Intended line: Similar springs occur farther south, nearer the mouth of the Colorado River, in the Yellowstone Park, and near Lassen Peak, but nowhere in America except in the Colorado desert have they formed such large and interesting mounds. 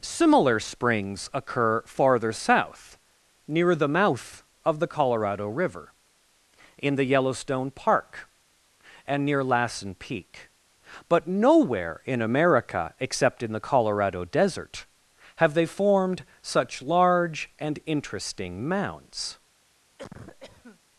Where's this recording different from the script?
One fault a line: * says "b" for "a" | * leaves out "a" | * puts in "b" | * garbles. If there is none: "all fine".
* says "near" for "nearer"